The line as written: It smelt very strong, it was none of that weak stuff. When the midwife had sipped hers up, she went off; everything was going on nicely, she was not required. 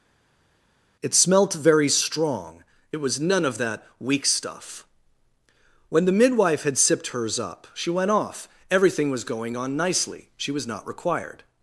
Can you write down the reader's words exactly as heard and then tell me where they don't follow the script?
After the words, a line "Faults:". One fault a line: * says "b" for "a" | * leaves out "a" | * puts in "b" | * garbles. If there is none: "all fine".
It smelt very strong, it was none of that weak stuff. When the midwife had sipped hers up, she went off; everything was going on nicely, she was not required.
Faults:
all fine